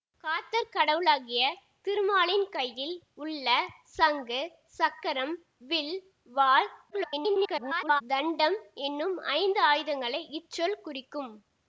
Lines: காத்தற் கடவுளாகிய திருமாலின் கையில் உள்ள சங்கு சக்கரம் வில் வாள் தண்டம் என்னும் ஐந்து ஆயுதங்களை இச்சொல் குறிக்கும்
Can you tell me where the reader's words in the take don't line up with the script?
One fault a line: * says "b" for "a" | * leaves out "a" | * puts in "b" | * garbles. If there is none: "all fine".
* garbles